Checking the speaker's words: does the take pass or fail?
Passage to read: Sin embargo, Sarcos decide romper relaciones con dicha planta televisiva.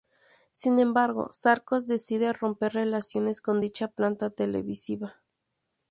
pass